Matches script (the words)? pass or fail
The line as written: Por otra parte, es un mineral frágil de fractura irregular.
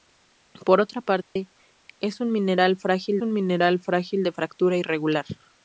fail